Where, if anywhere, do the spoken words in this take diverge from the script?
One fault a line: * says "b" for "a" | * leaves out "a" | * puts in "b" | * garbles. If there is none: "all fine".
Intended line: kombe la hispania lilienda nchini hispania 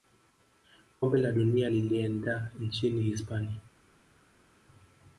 * says "dunia" for "hispania"